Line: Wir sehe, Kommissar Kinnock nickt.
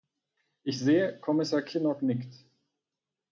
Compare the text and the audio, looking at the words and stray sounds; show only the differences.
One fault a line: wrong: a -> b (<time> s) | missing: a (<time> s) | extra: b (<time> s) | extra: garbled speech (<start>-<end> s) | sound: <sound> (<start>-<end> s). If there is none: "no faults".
wrong: Wir -> Ich (0.6 s)